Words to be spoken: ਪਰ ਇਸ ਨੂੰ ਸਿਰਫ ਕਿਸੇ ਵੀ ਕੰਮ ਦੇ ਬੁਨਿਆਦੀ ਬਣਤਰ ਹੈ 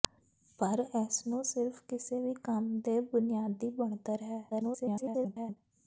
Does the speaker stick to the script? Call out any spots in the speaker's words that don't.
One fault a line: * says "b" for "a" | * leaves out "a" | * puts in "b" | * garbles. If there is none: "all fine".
* garbles